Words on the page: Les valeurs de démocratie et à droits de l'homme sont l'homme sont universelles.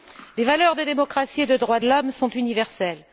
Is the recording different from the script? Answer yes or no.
yes